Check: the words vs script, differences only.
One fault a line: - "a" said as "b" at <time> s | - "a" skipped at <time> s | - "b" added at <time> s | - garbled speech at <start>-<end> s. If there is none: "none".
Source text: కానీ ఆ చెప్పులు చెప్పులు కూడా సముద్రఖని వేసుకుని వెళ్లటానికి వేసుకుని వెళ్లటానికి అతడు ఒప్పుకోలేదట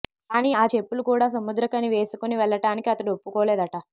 - "చెప్పులు" skipped at 1.0 s
- "వేసుకుని వెళ్లటానికి" skipped at 2.9 s